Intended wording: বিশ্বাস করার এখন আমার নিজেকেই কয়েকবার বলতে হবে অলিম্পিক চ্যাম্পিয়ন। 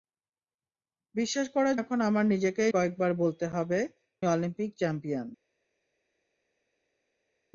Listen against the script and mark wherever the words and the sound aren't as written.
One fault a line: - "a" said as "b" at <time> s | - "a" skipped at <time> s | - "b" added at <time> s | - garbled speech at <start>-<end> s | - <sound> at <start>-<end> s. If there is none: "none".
none